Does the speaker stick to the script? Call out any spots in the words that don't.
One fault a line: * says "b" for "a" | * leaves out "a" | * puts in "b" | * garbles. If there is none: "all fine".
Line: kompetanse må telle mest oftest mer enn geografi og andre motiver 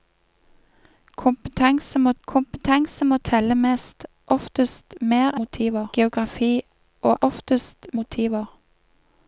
* puts in "kompetanse må"
* says "motiver" for "enn"
* says "oftest" for "andre"